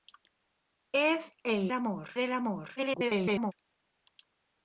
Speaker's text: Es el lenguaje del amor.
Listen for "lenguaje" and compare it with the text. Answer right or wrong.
wrong